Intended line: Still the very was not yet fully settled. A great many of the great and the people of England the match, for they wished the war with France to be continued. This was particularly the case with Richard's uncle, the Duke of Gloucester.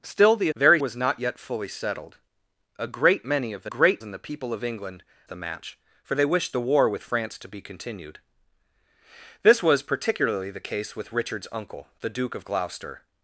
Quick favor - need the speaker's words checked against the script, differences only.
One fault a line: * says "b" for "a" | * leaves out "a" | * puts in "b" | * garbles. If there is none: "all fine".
all fine